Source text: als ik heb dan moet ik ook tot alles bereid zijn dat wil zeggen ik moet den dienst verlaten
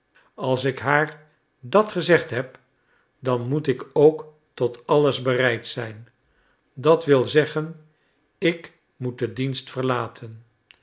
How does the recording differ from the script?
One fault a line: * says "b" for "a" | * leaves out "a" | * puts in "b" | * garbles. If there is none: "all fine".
* puts in "haar dat gezegd"